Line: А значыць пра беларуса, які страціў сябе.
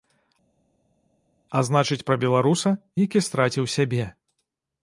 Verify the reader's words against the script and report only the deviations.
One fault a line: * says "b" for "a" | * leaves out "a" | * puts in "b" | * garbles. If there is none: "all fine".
all fine